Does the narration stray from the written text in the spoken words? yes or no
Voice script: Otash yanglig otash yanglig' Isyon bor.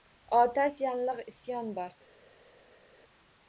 yes